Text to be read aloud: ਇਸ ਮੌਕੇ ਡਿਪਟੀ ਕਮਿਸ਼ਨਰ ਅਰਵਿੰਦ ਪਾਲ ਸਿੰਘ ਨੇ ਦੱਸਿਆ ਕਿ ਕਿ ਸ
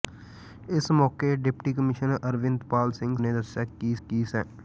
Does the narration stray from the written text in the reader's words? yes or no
no